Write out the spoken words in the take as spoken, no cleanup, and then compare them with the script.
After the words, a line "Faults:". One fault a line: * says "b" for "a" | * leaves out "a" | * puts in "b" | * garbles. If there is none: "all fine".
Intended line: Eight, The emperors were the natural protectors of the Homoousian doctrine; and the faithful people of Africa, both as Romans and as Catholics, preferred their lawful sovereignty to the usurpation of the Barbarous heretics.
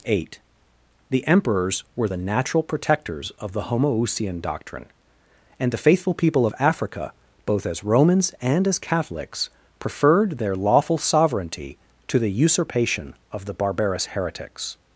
Eight, The emperors were the natural protectors of the Homoousian doctrine; and the faithful people of Africa, both as Romans and as Catholics, preferred their lawful sovereignty to the usurpation of the Barbarous heretics.
Faults:
all fine